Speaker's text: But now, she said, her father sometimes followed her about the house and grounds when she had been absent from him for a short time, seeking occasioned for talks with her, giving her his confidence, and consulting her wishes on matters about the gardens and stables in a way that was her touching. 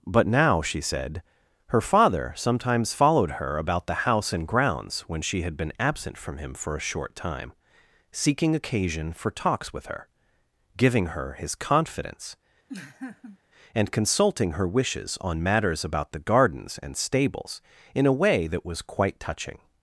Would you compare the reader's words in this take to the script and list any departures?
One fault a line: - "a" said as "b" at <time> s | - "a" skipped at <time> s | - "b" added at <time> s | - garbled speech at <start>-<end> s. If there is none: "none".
- "occasioned" said as "occasion" at 8.5 s
- "her" said as "quite" at 18.8 s